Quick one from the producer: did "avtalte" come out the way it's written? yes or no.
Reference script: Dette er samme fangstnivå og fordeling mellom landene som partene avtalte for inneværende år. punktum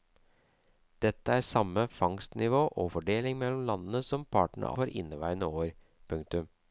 no